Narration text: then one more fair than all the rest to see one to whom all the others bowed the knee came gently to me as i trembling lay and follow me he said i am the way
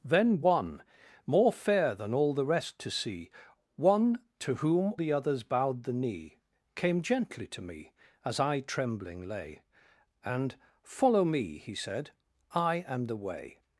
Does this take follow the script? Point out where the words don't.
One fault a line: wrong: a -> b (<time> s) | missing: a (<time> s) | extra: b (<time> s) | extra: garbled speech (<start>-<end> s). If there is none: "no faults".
missing: all (5.0 s)